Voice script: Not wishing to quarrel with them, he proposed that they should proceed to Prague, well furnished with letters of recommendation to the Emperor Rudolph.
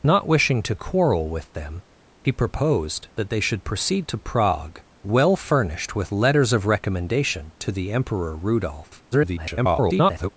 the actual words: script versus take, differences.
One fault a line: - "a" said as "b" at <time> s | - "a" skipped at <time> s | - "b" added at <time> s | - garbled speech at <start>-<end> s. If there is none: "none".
- garbled speech at 9.1-10.3 s